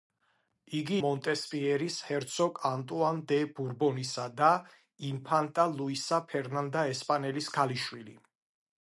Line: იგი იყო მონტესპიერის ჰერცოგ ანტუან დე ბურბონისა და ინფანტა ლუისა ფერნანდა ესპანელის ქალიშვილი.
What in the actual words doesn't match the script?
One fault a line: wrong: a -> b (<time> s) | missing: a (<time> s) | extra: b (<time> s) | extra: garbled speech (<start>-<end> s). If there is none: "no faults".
missing: იყო (0.9 s)